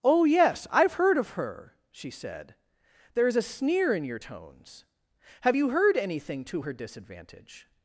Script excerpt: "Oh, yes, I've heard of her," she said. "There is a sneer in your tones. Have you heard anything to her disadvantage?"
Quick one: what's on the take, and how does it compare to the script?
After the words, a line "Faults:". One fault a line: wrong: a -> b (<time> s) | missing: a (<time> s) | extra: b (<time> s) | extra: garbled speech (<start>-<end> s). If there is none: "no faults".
"Oh, yes, I've heard of her," she said. "There is a sneer in your tones. Have you heard anything to her disadvantage?"
Faults:
no faults